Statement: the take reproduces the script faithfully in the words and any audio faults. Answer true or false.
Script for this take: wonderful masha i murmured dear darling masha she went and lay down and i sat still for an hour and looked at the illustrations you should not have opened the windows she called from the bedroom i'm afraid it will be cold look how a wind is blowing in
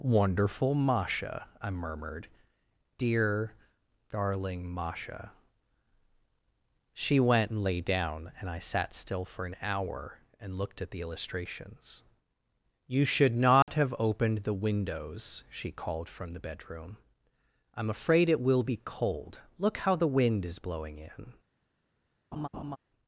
false